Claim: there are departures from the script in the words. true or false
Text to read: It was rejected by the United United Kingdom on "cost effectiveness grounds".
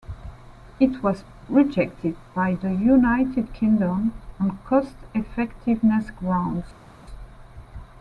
true